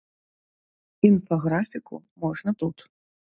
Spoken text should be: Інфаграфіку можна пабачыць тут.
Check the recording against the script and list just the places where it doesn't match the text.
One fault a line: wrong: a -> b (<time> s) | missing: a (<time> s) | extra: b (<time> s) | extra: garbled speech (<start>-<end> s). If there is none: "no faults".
missing: пабачыць (2.5 s)